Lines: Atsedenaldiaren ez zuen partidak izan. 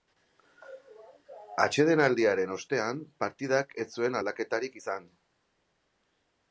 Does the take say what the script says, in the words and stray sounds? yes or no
no